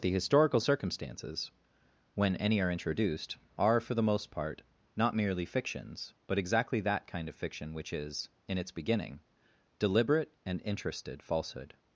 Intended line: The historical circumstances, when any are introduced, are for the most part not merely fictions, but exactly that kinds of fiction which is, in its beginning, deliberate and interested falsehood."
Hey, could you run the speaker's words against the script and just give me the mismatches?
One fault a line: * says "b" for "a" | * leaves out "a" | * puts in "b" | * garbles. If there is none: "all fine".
* says "kind" for "kinds"